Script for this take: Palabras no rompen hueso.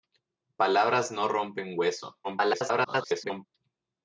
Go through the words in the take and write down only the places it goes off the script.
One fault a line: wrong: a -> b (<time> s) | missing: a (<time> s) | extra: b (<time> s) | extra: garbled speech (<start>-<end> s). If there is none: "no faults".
extra: garbled speech (2.2-3.5 s)